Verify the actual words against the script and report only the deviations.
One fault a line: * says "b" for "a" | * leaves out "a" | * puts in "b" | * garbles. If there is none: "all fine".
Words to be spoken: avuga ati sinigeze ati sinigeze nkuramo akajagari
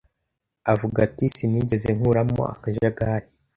* leaves out "ati sinigeze"